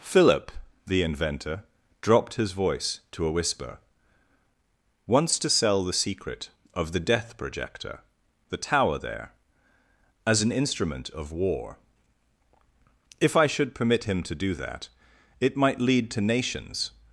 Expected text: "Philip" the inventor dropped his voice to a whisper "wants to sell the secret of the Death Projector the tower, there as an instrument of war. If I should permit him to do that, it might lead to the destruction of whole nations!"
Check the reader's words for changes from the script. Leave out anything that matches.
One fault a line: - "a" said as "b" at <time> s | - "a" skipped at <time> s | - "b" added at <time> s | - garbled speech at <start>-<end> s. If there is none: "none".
- "the destruction of whole" skipped at 16.2 s